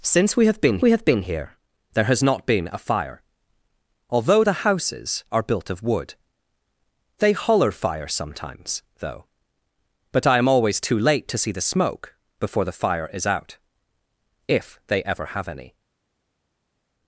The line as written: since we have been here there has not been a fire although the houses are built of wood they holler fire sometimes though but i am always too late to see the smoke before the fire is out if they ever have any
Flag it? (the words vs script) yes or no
yes